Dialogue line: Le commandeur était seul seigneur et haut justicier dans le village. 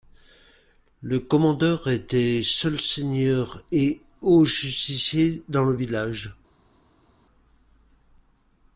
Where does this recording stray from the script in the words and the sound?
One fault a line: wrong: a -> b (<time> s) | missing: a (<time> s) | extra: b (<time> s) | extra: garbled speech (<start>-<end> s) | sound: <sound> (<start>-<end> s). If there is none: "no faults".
no faults